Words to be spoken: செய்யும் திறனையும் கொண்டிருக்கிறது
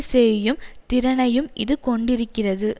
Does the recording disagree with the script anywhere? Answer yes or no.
yes